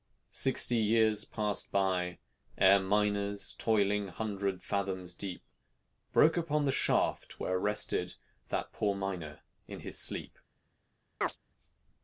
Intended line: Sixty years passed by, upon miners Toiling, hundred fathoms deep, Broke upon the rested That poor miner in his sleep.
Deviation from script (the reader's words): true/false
true